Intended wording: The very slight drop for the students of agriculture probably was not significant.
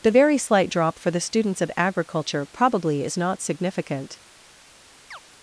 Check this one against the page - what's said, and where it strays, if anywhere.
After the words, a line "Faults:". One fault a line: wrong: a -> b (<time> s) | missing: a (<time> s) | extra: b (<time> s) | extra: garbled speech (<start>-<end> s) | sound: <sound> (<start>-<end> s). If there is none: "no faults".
The very slight drop for the students of agriculture probably is not significant.
Faults:
wrong: was -> is (3.0 s)
sound: chirp (5.1-5.2 s)